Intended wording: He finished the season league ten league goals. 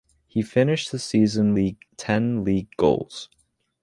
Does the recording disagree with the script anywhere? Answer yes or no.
no